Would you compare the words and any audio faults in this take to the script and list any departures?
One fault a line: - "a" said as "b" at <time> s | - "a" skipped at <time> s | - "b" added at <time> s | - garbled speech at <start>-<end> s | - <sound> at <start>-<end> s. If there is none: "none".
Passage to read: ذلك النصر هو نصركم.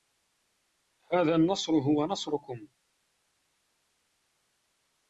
- "ذلك" said as "هذا" at 1.1 s